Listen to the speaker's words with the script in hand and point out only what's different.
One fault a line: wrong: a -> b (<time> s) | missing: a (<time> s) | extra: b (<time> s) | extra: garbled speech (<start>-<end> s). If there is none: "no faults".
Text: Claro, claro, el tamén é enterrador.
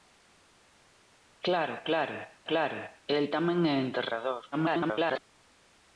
extra: claro (2.5 s)
extra: garbled speech (4.5-5.2 s)